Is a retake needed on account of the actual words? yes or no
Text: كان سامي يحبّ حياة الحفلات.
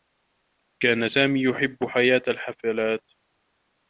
no